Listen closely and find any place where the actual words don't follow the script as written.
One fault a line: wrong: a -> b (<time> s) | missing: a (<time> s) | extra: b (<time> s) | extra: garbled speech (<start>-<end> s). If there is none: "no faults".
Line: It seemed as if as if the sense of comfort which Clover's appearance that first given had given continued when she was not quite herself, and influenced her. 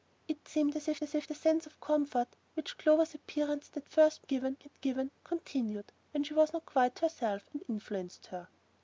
no faults